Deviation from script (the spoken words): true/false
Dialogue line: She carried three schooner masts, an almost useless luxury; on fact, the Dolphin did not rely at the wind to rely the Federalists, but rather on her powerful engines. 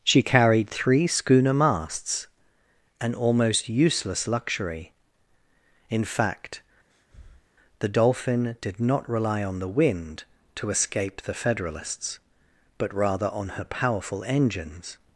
true